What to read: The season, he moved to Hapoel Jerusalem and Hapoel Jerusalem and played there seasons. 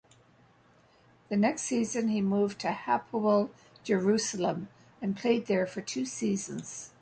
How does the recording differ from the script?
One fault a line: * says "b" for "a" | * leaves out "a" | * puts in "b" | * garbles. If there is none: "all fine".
* puts in "next"
* says "played there for two" for "Hapoel Jerusalem and played there"